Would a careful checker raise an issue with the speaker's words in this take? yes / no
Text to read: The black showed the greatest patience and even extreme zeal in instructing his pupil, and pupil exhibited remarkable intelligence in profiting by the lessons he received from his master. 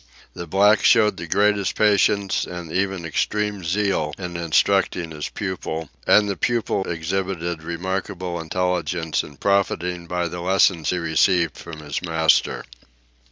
yes